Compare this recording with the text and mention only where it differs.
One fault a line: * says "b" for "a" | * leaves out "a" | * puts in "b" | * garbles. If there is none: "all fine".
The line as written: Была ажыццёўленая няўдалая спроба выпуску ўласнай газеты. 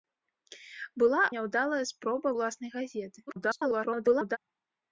* leaves out "ажыццёўленая"
* leaves out "выпуску"
* garbles